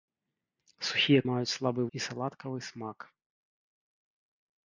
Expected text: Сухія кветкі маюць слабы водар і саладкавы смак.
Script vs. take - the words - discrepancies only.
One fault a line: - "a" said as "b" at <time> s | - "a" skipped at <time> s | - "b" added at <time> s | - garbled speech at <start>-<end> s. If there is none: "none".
- "кветкі" skipped at 1.2 s
- "водар" skipped at 1.8 s